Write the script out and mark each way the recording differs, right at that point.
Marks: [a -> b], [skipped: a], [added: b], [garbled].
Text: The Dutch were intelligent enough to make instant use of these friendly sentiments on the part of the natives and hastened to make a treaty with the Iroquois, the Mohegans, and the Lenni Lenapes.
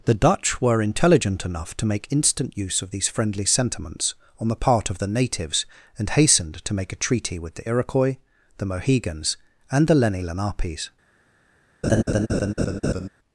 The Dutch were intelligent enough to make instant use of these friendly sentiments on the part of the natives and hastened to make a treaty with the Iroquois, the Mohegans, and the Lenni Lenapes.